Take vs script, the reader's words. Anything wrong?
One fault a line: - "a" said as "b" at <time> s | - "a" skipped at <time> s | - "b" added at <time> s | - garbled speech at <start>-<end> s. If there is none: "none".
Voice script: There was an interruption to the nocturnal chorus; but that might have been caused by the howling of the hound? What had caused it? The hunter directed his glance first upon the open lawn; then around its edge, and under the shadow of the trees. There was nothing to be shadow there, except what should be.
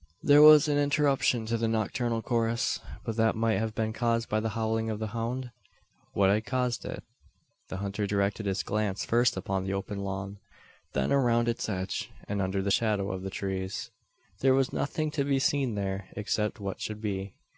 - "shadow" said as "seen" at 15.4 s